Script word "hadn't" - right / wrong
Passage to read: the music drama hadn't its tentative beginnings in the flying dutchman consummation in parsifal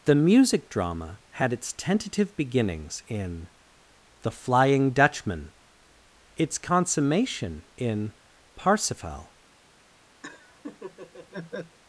wrong